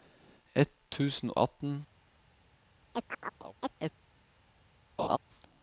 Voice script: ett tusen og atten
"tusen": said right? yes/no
yes